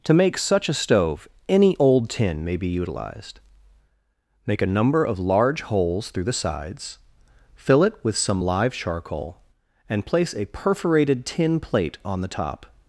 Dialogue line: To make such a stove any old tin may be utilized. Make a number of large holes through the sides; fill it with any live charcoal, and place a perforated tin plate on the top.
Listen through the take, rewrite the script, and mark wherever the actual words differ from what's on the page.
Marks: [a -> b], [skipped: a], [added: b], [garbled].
To make such a stove any old tin may be utilized. Make a number of large holes through the sides; fill it with [any -> some] live charcoal, and place a perforated tin plate on the top.